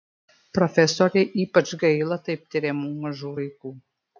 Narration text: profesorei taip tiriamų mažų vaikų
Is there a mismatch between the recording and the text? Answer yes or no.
yes